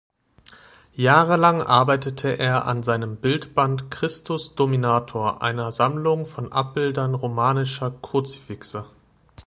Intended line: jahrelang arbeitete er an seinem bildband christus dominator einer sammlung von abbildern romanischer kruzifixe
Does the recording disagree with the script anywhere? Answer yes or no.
no